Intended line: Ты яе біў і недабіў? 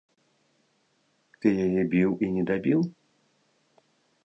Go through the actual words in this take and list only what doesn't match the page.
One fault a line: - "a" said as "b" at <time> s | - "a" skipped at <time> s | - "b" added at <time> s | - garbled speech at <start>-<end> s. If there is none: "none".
none